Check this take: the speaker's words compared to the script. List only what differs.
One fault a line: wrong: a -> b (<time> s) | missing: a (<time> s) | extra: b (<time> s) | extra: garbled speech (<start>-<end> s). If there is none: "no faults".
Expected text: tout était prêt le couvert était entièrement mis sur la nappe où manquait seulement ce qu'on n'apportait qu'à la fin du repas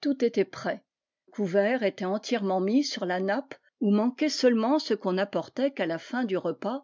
missing: le (0.8 s)